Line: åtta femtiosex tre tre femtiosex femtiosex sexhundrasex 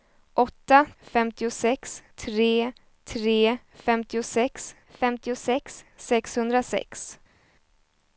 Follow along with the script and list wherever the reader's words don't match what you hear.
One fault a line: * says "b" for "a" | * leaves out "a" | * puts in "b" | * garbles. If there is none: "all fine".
all fine